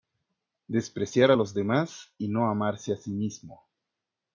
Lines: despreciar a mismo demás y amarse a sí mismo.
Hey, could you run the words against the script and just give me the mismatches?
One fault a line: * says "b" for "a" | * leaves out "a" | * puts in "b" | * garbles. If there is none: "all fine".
* says "los" for "mismo"
* puts in "no"